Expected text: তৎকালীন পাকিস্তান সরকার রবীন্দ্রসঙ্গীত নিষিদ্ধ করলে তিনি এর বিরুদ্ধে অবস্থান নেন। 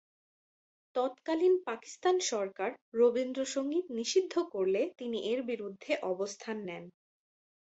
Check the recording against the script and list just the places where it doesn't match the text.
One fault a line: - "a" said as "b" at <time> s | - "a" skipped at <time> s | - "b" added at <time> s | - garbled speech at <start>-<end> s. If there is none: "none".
none